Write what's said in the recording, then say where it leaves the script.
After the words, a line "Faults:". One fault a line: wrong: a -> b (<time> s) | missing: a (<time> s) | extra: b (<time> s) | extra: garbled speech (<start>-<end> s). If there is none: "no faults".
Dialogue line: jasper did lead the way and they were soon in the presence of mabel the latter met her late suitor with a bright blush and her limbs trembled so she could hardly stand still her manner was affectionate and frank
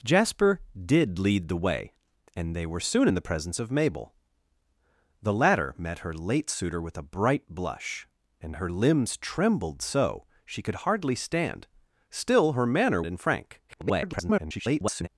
jasper did lead the way and they were soon in the presence of mabel the latter met her late suitor with a bright blush and her limbs trembled so she could hardly stand still her manner and frank [garbled]
Faults:
missing: was affectionate (13.0 s)
extra: garbled speech (13.7-15.1 s)